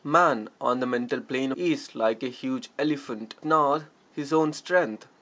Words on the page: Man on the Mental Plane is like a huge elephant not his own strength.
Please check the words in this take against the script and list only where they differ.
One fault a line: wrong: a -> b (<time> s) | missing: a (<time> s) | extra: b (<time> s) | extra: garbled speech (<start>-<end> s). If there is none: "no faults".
no faults